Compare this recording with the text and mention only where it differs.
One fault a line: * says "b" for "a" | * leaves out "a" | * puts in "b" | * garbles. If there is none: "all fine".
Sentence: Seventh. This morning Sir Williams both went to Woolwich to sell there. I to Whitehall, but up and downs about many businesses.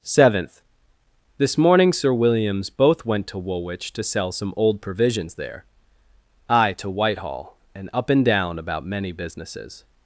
* puts in "some old provisions"
* says "and" for "but"
* says "down" for "downs"